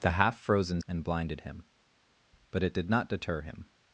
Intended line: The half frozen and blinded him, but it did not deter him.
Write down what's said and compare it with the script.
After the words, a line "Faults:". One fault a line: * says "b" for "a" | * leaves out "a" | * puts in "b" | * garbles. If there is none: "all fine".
The half frozen and blinded him, but it did not deter him.
Faults:
all fine